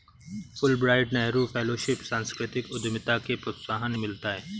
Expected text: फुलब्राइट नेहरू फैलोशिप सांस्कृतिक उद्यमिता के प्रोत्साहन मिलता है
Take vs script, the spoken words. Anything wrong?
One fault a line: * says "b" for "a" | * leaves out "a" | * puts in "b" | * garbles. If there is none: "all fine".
all fine